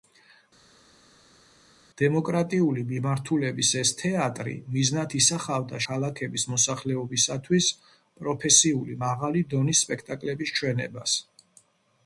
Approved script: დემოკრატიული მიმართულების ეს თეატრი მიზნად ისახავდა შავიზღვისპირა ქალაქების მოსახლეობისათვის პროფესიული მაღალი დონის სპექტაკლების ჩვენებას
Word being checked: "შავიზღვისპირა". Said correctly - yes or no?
no